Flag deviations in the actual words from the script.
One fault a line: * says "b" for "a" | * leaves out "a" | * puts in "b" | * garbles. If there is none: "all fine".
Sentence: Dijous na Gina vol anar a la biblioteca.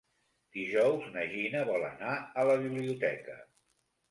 all fine